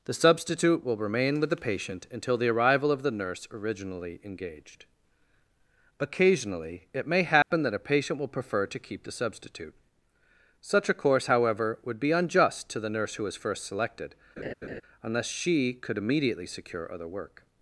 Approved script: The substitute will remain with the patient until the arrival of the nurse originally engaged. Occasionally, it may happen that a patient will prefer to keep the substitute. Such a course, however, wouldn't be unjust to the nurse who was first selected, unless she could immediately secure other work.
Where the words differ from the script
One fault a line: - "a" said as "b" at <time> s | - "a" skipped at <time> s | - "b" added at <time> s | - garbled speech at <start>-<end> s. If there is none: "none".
- "wouldn't" said as "would" at 11.8 s